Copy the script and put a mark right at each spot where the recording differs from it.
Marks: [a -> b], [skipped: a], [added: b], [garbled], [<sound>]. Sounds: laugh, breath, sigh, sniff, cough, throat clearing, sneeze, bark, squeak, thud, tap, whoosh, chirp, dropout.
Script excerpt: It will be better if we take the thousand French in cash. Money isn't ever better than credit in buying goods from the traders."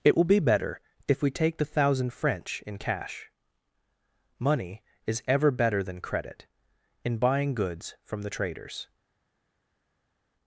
It will be better if we take the thousand French in cash. Money [isn't -> is] ever better than credit in buying goods from the traders."